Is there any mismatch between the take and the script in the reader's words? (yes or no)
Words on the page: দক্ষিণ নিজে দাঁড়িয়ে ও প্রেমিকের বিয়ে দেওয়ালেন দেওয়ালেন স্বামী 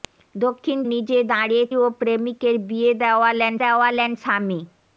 no